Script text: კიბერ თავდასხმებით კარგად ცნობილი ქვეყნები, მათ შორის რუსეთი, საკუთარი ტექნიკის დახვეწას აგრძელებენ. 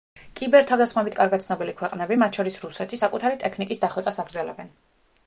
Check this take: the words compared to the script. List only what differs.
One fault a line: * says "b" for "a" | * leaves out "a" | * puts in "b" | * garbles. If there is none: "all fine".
all fine